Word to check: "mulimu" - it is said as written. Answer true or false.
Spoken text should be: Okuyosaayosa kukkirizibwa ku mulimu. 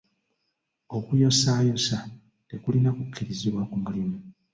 true